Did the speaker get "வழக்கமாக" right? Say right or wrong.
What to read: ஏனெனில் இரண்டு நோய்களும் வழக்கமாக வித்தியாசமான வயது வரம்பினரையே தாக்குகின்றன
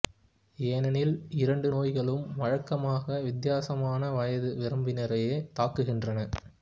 right